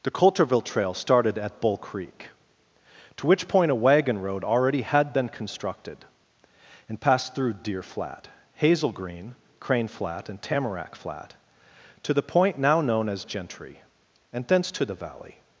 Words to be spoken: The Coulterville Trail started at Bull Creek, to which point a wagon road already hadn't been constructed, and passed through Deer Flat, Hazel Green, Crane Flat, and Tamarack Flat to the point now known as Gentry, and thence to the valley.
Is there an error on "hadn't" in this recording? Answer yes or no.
yes